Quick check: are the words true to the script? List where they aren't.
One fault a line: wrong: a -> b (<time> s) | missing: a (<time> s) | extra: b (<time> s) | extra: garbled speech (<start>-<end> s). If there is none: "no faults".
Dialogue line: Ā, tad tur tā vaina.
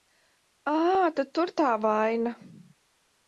no faults